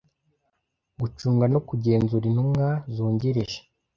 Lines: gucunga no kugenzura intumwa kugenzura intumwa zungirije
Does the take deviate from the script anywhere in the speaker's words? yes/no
yes